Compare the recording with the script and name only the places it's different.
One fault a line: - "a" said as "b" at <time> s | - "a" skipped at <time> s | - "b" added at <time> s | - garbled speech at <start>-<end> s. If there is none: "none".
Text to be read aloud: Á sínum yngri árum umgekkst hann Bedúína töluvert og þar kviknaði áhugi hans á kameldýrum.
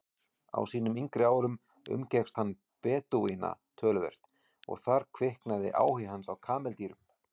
none